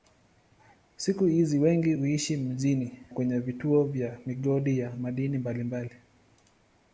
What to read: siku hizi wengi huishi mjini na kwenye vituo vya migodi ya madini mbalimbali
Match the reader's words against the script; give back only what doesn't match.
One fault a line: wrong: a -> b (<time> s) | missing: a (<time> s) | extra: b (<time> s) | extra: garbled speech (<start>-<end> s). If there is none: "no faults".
missing: na (2.9 s)